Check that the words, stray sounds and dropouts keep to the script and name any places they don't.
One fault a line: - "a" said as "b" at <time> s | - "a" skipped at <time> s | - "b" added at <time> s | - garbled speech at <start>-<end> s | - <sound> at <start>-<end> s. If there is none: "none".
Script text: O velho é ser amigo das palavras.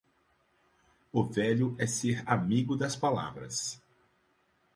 none